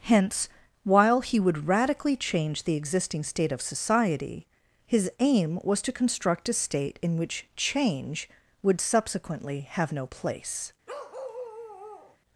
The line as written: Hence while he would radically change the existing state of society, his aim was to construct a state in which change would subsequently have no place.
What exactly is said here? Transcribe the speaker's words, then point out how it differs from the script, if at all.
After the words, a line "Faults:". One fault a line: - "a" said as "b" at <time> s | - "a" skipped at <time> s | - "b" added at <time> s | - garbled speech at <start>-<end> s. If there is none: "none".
Hence while he would radically change the existing state of society, his aim was to construct a state in which change would subsequently have no place.
Faults:
none